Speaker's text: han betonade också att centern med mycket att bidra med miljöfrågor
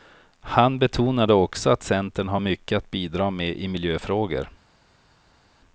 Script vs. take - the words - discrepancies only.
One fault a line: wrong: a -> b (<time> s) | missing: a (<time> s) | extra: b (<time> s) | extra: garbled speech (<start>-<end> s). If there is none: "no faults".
wrong: med -> har (2.3 s)
extra: i (3.6 s)